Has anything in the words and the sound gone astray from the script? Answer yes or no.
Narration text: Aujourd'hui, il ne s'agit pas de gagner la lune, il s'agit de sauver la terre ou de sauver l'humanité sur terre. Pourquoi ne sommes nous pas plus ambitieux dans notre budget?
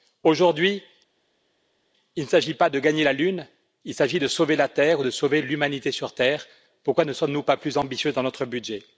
no